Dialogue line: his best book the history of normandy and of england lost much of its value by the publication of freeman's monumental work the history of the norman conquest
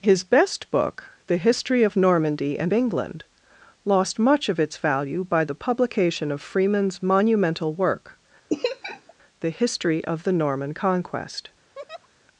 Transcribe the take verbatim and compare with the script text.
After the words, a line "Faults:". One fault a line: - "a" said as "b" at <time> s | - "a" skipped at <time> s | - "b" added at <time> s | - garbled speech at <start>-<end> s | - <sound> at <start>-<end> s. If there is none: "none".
his best book the history of normandy and england lost much of its value by the publication of freeman's monumental work the history of the norman conquest
Faults:
- "of" skipped at 2.7 s
- laugh at 8.5-9.1 s
- laugh at 11.8-12.1 s